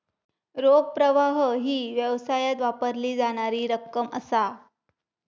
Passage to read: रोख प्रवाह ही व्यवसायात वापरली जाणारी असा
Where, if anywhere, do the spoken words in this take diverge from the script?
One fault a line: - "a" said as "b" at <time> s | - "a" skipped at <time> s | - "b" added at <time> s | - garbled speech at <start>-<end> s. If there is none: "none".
- "रक्कम" added at 3.7 s